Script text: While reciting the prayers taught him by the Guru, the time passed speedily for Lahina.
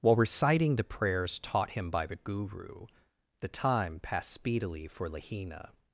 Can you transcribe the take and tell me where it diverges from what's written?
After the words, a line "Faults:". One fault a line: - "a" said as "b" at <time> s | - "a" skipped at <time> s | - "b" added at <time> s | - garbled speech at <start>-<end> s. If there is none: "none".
While reciting the prayers taught him by the Guru, the time passed speedily for Lahina.
Faults:
none